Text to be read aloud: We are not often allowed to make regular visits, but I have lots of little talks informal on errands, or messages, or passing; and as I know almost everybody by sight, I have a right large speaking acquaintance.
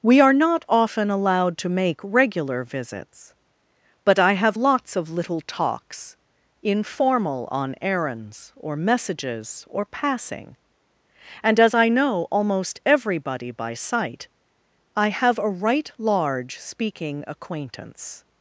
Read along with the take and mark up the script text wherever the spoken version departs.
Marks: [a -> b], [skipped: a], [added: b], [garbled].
We are not often allowed to make regular visits, but I have lots of little talks informal on errands, or messages, or passing; and as I know almost everybody by sight, I have a right large speaking acquaintance.